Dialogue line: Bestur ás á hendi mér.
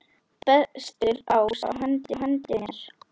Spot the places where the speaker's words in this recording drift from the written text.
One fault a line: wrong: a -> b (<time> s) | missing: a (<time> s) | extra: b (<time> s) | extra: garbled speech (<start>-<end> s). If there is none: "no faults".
extra: hendi (2.2 s)